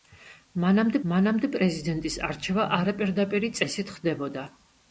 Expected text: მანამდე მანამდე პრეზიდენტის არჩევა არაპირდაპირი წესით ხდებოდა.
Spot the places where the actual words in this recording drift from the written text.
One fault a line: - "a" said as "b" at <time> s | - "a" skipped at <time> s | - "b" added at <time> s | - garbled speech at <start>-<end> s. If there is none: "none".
none